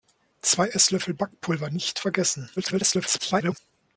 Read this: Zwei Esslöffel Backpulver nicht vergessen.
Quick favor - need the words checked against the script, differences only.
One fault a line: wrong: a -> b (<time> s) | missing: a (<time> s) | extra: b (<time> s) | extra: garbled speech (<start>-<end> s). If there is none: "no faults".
extra: garbled speech (2.6-3.6 s)